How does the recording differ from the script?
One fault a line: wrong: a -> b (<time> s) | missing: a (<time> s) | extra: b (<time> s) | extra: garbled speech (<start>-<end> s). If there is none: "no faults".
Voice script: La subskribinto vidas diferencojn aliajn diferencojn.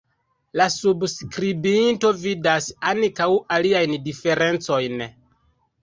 wrong: diferencojn -> ankaŭ (2.9 s)